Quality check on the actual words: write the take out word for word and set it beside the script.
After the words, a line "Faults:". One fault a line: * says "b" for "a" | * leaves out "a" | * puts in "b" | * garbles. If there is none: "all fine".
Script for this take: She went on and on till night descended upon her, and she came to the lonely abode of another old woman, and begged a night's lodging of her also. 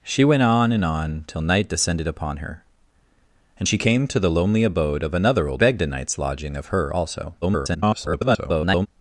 She went on and on till night descended upon her, and she came to the lonely abode of another old begged a night's lodging of her also. [garbled]
Faults:
* leaves out "woman and"
* garbles